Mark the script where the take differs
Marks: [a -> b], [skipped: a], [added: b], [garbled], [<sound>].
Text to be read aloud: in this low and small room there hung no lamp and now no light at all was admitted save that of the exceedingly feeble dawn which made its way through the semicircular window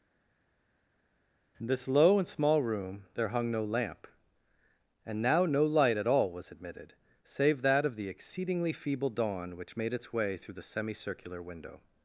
in this low and small room there hung no lamp and now no light at all was admitted save that of the exceedingly feeble dawn which made its way through the semicircular window